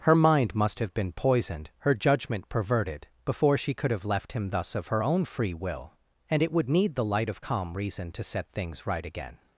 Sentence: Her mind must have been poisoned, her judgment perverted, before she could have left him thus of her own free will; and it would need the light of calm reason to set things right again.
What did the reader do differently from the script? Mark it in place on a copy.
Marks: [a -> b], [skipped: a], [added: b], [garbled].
Her mind must have been poisoned, her judgment perverted, before she could have left him thus of her own free will; and it would need the light of calm reason to set things right again.